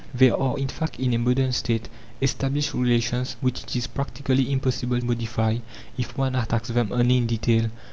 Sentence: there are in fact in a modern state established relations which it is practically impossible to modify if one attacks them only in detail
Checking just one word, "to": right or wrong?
wrong